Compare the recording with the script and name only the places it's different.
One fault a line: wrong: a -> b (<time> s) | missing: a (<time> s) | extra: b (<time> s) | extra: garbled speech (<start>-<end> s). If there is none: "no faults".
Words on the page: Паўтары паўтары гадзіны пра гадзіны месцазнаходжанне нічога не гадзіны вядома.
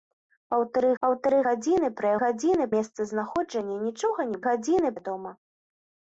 no faults